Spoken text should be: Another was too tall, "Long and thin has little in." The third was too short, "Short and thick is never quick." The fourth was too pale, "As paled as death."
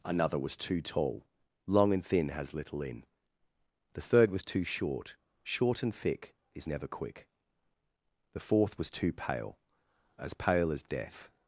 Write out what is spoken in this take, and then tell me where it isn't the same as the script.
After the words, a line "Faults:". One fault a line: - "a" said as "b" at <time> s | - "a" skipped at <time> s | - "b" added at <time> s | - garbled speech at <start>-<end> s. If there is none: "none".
Another was too tall, "Long and thin has little in." The third was too short, "Short and thick is never quick." The fourth was too pale, "As pale as death."
Faults:
- "paled" said as "pale" at 10.3 s